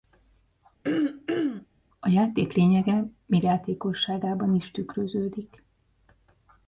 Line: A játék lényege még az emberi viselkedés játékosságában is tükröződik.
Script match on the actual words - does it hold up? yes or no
no